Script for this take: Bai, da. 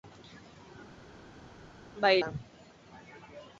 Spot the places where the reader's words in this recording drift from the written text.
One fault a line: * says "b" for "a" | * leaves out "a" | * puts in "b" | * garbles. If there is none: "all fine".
all fine